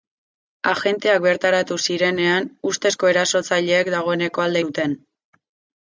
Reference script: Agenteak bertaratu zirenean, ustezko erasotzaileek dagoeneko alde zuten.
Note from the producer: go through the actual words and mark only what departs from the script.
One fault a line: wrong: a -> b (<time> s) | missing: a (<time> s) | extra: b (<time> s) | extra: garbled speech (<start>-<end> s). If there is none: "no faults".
no faults